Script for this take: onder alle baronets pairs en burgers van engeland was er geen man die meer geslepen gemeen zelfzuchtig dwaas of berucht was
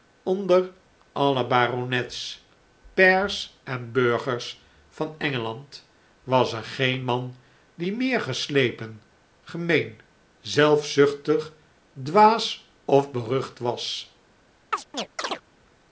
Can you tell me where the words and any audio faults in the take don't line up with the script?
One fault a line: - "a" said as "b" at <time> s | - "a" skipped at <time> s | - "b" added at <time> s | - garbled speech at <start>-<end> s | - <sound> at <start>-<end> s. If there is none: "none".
- chirp at 14.7-15.4 s